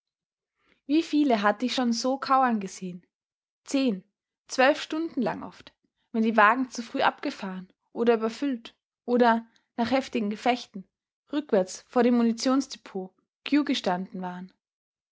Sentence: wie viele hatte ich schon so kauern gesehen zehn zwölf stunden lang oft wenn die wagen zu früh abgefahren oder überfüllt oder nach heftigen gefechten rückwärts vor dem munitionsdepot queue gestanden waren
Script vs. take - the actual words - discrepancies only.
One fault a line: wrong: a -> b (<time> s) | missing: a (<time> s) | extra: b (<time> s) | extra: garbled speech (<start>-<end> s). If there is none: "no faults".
no faults